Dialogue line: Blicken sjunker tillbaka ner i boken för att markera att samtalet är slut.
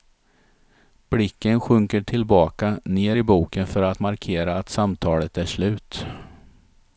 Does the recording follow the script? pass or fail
pass